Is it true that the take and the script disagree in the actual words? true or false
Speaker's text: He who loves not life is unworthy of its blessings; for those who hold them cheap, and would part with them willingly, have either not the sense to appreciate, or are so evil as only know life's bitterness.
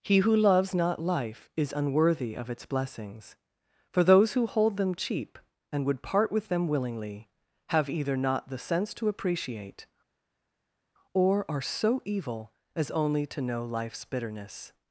true